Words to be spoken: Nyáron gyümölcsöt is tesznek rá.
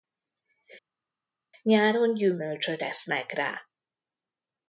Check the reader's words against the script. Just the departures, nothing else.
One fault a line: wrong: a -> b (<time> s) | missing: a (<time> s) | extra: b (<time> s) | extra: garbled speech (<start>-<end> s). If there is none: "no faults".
missing: is (2.8 s)